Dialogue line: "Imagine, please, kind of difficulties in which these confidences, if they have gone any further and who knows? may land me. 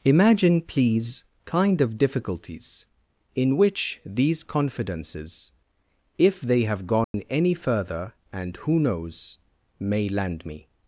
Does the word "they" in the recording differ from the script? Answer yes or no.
no